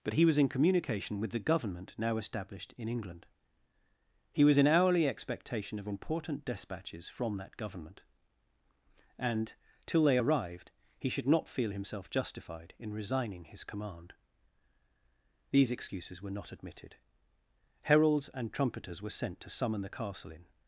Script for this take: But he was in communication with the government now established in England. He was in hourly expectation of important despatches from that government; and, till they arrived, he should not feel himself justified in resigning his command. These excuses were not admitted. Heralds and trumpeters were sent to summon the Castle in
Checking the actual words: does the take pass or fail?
pass